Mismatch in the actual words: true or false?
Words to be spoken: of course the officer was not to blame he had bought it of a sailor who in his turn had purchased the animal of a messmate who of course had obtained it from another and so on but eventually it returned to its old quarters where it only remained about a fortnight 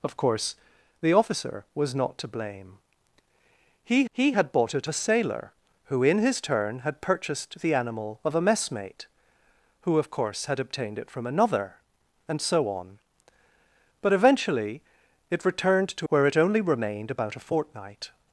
true